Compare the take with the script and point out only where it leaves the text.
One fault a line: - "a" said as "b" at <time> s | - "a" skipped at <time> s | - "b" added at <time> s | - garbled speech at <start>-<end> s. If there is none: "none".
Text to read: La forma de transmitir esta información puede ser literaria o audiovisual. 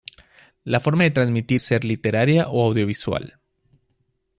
- "esta información puede" skipped at 1.6 s